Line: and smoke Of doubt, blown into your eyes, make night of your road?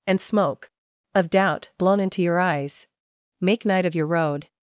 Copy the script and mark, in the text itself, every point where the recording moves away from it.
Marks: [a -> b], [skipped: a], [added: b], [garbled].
and smoke Of doubt, blown into your eyes, make night of your road?